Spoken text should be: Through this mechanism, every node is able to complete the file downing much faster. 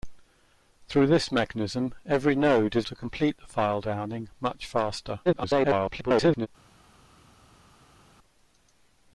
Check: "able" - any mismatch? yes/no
yes